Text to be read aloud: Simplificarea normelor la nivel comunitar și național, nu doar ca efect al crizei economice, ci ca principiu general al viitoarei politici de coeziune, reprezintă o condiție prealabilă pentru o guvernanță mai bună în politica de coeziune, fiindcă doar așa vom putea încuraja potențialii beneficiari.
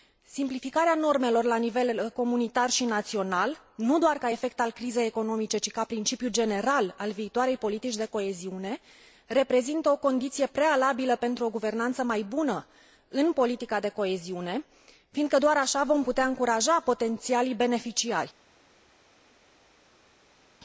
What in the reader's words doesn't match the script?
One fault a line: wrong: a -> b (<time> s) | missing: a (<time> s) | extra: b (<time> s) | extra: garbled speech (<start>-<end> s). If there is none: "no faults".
no faults